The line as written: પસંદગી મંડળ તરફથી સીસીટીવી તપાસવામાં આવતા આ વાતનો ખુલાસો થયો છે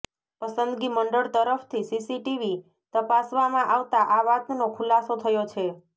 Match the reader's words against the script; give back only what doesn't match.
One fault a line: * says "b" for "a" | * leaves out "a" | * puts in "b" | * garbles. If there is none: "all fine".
all fine